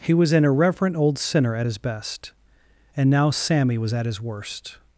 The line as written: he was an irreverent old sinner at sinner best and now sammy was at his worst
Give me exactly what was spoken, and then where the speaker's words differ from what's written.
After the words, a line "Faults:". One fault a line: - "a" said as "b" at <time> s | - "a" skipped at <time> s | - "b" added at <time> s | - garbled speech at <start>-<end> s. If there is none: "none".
he was an irreverent old sinner at his best and now sammy was at his worst
Faults:
- "sinner" said as "his" at 1.6 s